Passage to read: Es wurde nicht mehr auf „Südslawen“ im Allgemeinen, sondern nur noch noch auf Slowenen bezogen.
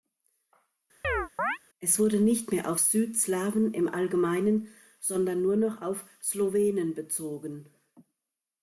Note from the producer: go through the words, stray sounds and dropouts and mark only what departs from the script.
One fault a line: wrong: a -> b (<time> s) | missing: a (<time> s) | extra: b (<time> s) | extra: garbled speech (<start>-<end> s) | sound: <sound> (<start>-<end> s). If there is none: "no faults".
sound: chirp (1.0-1.6 s)
missing: noch (5.8 s)